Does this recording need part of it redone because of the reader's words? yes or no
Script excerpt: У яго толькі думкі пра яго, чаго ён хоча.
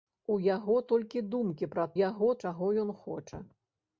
no